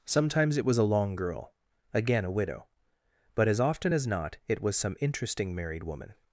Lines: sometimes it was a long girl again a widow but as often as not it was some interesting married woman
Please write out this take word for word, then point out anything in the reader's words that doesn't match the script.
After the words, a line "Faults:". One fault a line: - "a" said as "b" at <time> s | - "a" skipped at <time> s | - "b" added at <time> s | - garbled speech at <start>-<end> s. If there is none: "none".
sometimes it was a long girl again a widow but as often as not it was some interesting married woman
Faults:
none